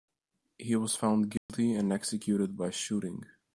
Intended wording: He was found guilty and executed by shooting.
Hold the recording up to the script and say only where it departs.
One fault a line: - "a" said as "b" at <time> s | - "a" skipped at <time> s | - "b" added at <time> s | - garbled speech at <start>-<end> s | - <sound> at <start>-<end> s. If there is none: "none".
- dropout at 1.4-1.5 s